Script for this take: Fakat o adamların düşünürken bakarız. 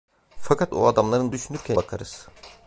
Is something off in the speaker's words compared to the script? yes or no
no